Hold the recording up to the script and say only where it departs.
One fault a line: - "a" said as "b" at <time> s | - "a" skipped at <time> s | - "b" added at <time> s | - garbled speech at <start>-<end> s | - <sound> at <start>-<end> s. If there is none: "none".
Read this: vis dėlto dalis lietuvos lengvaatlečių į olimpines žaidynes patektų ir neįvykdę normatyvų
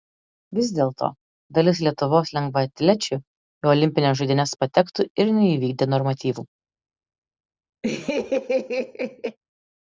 - laugh at 7.8-9.4 s